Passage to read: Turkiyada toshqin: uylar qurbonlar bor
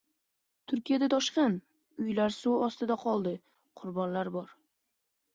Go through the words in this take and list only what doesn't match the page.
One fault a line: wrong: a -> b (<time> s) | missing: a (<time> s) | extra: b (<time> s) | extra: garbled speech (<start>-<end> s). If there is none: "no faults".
extra: suv ostida qoldi (2.4 s)